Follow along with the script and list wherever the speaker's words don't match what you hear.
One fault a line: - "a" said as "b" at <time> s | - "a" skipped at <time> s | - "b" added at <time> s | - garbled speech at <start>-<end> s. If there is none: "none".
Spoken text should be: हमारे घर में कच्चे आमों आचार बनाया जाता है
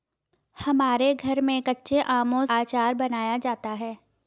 none